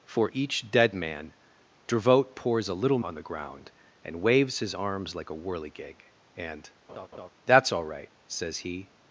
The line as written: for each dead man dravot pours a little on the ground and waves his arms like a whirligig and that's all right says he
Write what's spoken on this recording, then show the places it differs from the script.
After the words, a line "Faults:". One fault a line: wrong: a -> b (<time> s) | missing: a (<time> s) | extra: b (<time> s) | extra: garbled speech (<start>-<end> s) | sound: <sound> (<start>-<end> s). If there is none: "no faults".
for each dead man dravot pours a little on the ground and waves his arms like a whirligig and that's all right says he
Faults:
sound: laugh (6.9-7.3 s)